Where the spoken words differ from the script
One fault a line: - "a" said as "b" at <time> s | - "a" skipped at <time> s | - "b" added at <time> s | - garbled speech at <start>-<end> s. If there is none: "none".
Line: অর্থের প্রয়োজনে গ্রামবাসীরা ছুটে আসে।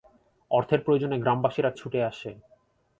none